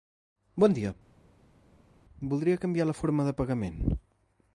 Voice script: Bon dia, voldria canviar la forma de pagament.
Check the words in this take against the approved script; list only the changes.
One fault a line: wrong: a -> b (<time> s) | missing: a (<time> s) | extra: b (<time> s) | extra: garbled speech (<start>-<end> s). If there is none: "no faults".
no faults